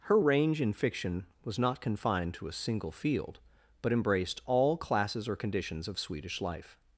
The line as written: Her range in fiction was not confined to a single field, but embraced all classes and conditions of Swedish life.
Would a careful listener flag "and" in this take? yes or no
yes